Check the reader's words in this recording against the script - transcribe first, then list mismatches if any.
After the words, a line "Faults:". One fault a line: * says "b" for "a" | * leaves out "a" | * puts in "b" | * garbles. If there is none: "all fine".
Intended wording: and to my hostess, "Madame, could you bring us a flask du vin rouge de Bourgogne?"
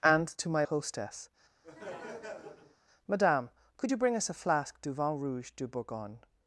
and to my hostess, "Madame, could you bring us a flask du vin rouge de Bourgogne?"
Faults:
all fine